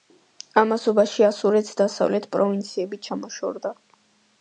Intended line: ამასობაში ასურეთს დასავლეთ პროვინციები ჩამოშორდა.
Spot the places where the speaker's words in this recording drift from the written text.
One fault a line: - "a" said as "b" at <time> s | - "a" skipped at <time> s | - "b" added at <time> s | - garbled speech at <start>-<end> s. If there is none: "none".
none